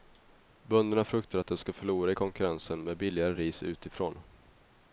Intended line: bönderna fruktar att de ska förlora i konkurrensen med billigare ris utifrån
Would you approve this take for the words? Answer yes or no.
yes